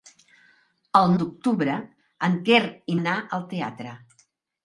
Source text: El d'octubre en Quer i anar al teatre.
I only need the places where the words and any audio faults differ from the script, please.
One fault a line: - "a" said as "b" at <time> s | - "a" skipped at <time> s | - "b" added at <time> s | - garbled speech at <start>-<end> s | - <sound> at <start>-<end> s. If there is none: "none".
none